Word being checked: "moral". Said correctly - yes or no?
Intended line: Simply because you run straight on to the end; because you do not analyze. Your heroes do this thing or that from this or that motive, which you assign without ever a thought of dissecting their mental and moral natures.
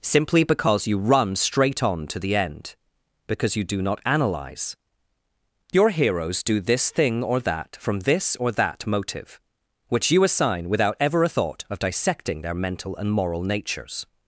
yes